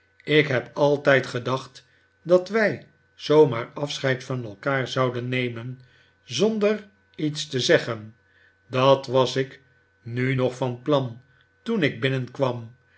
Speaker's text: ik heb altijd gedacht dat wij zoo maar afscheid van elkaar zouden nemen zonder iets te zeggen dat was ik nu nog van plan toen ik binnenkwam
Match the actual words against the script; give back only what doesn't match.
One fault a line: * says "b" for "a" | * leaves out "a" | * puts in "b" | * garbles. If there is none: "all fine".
all fine